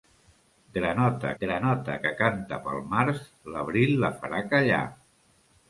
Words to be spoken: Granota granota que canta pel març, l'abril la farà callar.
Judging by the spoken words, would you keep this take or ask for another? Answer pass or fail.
pass